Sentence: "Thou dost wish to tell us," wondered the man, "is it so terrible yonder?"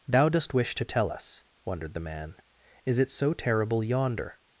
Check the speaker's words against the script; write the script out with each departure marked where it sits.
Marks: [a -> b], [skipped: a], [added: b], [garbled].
"Thou dost wish to tell us," wondered the man, "is it so terrible yonder?"